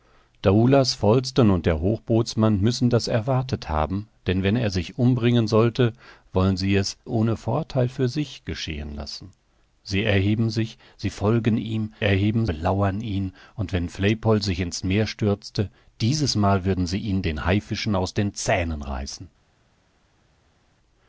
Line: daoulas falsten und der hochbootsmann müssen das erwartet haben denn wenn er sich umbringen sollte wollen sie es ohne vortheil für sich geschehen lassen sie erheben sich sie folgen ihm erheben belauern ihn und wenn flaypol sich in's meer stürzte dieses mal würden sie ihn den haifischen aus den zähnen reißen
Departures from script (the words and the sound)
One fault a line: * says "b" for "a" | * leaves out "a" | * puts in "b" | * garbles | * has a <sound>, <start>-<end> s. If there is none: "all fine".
all fine